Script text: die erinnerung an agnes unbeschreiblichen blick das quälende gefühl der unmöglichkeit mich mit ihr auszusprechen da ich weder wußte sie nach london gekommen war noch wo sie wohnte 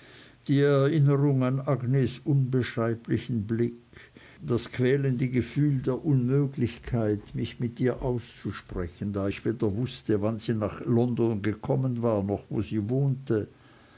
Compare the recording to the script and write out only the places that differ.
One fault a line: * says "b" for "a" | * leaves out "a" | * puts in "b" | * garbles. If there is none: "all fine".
* puts in "wann"